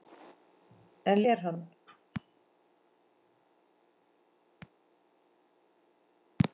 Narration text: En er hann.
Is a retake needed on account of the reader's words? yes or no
no